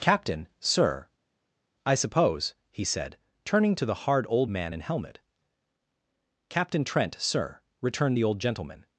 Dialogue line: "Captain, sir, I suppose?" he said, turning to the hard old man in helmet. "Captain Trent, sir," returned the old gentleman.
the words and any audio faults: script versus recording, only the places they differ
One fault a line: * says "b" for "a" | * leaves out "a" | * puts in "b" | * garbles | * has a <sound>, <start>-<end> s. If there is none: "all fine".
all fine